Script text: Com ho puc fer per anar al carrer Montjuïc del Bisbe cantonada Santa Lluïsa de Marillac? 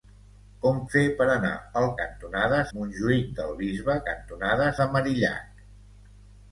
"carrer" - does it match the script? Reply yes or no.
no